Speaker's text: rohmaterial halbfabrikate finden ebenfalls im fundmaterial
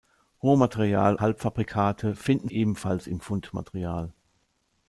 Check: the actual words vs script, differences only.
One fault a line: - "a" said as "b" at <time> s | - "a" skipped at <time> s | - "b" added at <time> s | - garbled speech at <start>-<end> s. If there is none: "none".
none